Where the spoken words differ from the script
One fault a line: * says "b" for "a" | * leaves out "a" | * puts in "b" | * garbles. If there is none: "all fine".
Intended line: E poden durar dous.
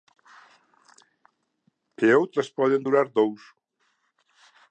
* puts in "outras"